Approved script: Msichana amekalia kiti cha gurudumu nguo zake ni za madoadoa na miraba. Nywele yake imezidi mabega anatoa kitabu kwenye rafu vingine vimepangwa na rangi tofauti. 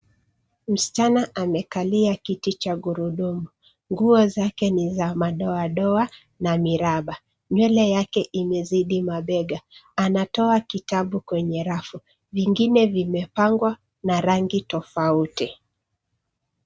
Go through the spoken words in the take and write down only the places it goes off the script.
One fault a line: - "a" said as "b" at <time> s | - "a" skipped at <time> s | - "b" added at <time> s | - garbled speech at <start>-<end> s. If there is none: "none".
none